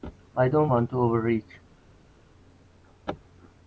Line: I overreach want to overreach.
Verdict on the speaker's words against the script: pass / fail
fail